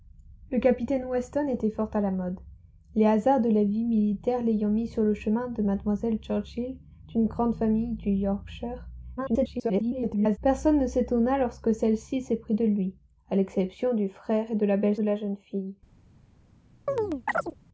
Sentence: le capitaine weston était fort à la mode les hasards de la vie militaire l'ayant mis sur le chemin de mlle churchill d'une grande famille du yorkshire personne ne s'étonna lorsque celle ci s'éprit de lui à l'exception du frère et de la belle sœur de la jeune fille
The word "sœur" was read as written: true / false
false